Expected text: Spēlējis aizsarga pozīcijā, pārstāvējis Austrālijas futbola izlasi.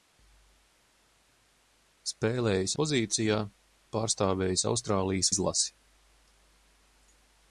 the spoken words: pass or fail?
fail